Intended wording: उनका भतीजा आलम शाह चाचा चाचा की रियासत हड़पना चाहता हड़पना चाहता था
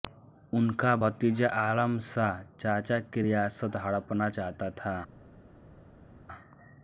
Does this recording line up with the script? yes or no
no